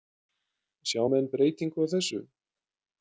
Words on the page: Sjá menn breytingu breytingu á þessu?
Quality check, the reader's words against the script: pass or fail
fail